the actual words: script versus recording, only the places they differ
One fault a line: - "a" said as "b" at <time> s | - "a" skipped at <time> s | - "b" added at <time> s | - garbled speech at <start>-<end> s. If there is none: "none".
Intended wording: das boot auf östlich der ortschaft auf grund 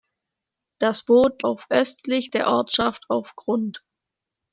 none